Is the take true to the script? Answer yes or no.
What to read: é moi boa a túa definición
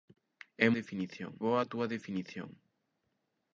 no